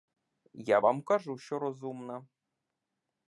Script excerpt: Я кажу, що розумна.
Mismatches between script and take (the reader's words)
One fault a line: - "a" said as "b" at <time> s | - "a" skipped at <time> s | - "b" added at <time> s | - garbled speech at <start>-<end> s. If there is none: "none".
- "вам" added at 0.8 s